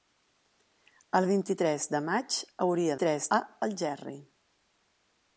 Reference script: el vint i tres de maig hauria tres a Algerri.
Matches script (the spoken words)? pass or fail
pass